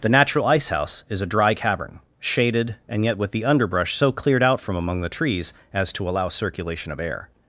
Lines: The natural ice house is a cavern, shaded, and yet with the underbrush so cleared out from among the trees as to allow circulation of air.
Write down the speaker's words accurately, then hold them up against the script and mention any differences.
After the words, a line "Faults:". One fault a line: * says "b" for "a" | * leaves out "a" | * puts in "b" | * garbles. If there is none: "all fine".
The natural ice house is a dry cavern, shaded, and yet with the underbrush so cleared out from among the trees as to allow circulation of air.
Faults:
* puts in "dry"